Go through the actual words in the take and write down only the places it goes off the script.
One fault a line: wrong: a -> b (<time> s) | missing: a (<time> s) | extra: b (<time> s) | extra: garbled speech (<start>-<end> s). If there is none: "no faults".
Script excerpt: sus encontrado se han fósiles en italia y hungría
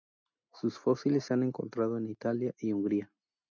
wrong: encontrado -> fósiles (0.8 s)
wrong: fósiles -> encontrado (1.4 s)